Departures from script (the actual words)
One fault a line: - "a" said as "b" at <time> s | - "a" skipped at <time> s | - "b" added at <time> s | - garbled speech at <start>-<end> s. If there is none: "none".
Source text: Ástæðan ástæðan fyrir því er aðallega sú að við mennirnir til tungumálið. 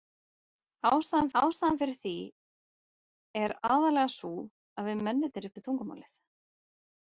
none